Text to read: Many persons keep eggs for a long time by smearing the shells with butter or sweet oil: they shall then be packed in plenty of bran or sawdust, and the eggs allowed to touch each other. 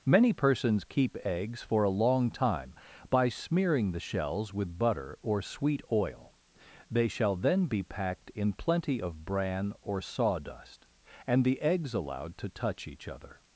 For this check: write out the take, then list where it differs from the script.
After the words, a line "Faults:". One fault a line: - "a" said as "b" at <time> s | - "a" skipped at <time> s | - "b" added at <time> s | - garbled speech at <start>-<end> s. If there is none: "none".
Many persons keep eggs for a long time by smearing the shells with butter or sweet oil: they shall then be packed in plenty of bran or sawdust, and the eggs allowed to touch each other.
Faults:
none